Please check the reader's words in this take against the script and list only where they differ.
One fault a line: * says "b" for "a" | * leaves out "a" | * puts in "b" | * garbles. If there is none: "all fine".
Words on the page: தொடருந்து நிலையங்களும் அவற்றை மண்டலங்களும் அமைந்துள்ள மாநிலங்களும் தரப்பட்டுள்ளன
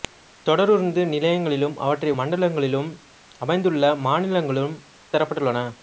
all fine